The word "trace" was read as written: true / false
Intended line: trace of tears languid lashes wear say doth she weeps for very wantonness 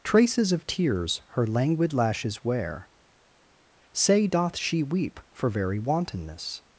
false